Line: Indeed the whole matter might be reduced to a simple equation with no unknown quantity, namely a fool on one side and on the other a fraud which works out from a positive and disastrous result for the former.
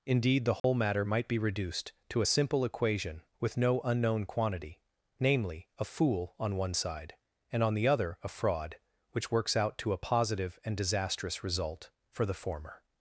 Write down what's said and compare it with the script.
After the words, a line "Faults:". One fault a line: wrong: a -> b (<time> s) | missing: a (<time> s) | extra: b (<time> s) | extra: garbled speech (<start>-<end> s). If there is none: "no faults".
Indeed the whole matter might be reduced to a simple equation with no unknown quantity, namely a fool on one side and on the other a fraud which works out to a positive and disastrous result for the former.
Faults:
wrong: from -> to (9.8 s)